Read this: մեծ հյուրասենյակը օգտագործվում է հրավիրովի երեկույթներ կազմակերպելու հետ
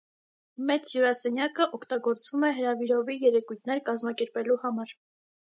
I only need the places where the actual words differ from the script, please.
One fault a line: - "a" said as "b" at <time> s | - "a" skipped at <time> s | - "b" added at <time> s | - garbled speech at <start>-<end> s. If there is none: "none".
- "հետ" said as "համար" at 4.7 s